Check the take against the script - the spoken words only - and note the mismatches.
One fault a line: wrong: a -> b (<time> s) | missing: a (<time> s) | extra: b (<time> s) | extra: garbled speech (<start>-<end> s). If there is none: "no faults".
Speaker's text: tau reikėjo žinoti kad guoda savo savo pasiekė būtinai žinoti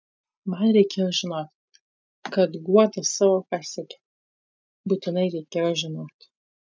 wrong: tau -> man (0.5 s)
missing: savo (3.4 s)
extra: reikėjo (5.4 s)